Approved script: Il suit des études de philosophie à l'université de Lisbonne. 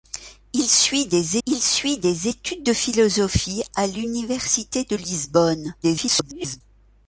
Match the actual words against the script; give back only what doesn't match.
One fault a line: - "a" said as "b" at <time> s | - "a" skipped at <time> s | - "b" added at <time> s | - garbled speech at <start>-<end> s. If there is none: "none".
- "il suit des" added at 1.5 s
- garbled speech at 5.8-6.6 s